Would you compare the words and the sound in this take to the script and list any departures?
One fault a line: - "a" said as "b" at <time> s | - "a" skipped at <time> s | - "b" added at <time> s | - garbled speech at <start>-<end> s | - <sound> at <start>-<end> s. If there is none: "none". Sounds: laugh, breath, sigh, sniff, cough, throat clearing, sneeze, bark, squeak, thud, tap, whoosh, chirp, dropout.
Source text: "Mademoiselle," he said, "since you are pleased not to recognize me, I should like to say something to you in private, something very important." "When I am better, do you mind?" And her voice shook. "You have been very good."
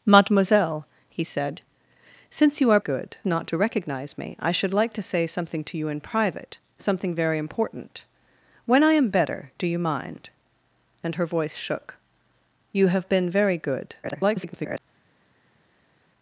- "pleased" said as "good" at 2.8 s
- garbled speech at 14.0-14.8 s